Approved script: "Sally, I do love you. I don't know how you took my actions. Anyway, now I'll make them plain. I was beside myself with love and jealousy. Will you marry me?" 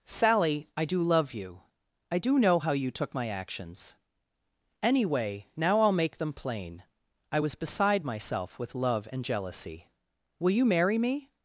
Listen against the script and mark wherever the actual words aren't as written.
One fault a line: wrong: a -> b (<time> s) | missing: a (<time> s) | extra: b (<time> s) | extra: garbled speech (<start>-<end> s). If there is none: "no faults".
wrong: don't -> do (2.2 s)